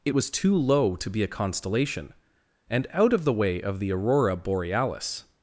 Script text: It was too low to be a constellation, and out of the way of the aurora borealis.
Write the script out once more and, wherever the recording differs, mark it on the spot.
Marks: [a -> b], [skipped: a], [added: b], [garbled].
It was too low to be a constellation, and out of the way of the aurora borealis.